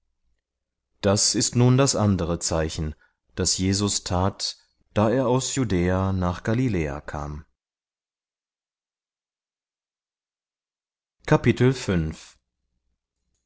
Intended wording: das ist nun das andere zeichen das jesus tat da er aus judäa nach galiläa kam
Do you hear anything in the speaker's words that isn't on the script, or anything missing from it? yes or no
no